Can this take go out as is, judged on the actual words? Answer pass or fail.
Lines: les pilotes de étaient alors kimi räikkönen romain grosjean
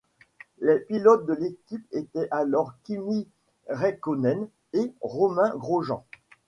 fail